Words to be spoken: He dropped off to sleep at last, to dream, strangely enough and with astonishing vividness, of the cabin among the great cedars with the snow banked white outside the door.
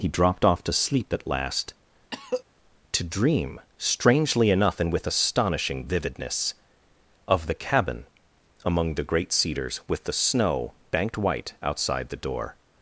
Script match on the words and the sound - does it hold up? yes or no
no